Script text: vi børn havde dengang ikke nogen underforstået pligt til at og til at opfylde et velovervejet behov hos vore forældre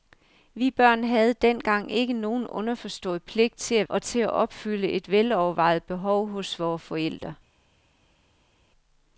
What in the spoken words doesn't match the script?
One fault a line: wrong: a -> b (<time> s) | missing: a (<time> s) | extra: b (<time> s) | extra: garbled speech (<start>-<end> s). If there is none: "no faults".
no faults